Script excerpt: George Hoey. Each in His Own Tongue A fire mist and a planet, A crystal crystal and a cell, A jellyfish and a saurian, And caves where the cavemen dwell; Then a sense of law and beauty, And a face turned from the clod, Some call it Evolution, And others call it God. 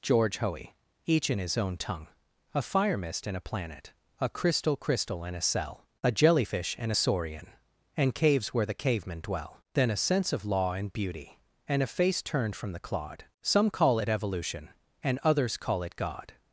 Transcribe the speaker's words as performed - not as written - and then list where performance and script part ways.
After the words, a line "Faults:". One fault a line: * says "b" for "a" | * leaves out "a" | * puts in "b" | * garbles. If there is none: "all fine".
George Hoey. Each in His Own Tongue A fire mist and a planet, A crystal crystal and a cell, A jellyfish and a saurian, And caves where the cavemen dwell; Then a sense of law and beauty, And a face turned from the clod, Some call it Evolution, And others call it God.
Faults:
all fine